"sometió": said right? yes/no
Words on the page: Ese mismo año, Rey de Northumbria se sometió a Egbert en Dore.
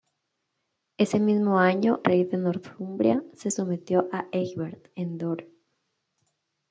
yes